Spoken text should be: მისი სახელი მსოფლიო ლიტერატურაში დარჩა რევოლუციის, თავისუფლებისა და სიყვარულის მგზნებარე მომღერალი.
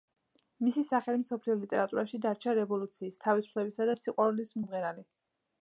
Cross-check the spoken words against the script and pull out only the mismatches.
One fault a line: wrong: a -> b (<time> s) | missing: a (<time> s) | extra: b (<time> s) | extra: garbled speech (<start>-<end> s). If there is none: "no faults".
missing: მგზნებარე (4.6 s)